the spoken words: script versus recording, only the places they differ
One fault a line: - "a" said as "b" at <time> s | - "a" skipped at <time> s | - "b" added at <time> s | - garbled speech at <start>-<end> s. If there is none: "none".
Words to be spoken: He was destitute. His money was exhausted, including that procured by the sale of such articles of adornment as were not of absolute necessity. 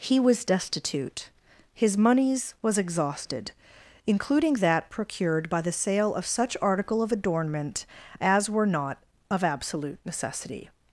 - "money" said as "moneys" at 2.0 s
- "articles" said as "article" at 6.6 s